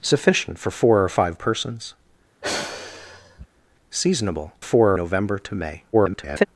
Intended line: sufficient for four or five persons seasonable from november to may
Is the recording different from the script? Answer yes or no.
yes